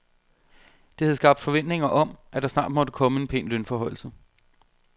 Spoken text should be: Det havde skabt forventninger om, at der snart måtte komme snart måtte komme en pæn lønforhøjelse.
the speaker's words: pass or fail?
fail